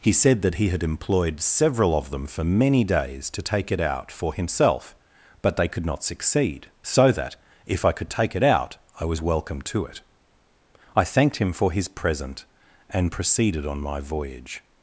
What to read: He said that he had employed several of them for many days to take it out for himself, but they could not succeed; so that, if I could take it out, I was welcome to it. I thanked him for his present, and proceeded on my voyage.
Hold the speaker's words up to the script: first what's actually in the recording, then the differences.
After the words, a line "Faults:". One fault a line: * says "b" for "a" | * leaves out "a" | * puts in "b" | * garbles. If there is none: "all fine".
He said that he had employed several of them for many days to take it out for himself, but they could not succeed; so that, if I could take it out, I was welcome to it. I thanked him for his present, and proceeded on my voyage.
Faults:
all fine